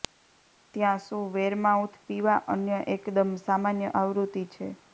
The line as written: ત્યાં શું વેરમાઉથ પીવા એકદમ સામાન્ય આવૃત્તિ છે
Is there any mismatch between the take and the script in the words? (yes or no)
yes